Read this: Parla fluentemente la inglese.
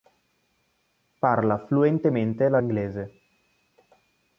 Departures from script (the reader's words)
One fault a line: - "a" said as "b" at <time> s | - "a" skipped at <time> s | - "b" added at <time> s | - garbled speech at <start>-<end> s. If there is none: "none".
none